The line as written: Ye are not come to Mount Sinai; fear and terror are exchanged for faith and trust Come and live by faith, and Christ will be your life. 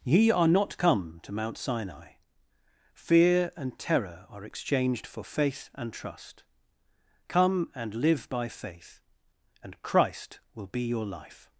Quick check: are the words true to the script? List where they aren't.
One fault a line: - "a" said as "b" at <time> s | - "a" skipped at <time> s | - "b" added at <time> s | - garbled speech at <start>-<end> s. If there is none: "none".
none